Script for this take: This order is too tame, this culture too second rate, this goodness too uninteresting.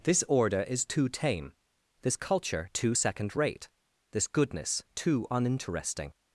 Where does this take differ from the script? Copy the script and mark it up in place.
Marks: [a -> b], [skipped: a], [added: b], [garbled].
This order is too tame, this culture too second rate, this goodness too uninteresting.